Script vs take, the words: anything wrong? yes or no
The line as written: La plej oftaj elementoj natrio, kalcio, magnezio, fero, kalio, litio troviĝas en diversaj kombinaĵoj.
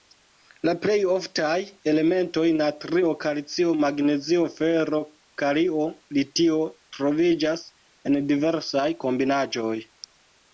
no